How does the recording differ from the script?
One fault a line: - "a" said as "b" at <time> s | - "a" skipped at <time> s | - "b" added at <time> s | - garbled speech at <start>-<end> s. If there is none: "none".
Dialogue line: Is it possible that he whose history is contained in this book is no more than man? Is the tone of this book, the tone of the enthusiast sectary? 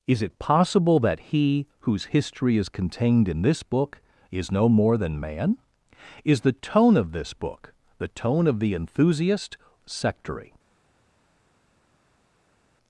none